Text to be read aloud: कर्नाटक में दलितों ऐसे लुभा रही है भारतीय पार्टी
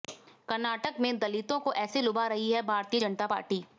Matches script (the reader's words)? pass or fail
fail